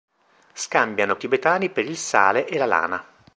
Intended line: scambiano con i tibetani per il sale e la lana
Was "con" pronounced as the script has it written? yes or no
no